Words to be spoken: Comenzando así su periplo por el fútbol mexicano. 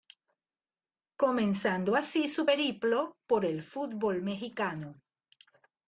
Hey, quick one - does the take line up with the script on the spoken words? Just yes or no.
yes